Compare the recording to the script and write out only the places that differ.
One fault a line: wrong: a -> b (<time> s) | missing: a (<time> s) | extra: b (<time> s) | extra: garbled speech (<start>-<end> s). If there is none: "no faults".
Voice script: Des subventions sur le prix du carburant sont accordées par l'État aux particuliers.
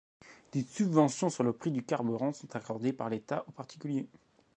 no faults